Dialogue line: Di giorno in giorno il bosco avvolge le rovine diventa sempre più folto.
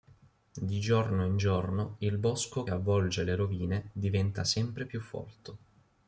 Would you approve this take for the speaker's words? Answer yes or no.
yes